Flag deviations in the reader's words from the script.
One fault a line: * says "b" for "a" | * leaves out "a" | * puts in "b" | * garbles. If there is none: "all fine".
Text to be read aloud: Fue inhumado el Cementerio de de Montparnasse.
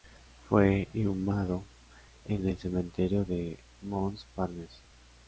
* puts in "en"
* leaves out "de"